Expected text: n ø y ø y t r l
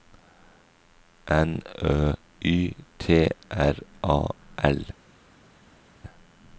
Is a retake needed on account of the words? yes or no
yes